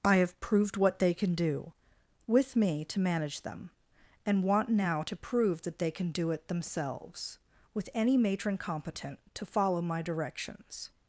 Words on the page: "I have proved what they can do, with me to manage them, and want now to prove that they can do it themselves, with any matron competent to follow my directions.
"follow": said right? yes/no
yes